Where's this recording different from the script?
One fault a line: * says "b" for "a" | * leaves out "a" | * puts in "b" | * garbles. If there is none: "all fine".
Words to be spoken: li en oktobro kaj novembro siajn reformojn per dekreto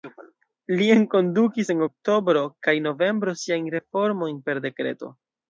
* puts in "enkondukis"